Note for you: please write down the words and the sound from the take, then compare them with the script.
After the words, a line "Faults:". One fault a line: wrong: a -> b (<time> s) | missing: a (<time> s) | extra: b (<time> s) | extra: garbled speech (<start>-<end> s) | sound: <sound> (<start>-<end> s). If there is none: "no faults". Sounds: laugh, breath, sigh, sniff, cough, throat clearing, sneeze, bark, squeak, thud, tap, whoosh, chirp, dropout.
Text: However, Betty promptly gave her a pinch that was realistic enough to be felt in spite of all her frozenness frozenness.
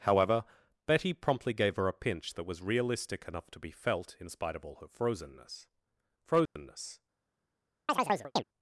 However, Betty promptly gave her a pinch that was realistic enough to be felt in spite of all her frozenness frozenness.
Faults:
sound: dropout (6.5-6.6 s)
sound: chirp (7.9-8.4 s)